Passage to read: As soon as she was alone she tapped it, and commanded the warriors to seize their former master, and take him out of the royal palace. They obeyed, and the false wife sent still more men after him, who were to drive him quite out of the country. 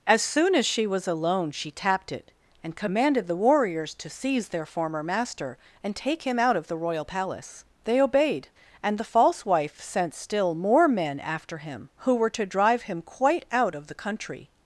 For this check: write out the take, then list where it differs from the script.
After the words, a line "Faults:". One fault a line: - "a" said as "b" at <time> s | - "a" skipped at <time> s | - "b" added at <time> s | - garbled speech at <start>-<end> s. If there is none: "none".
As soon as she was alone she tapped it, and commanded the warriors to seize their former master, and take him out of the royal palace. They obeyed, and the false wife sent still more men after him, who were to drive him quite out of the country.
Faults:
none